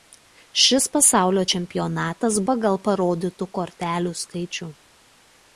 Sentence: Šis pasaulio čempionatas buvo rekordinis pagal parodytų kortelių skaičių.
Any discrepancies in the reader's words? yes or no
yes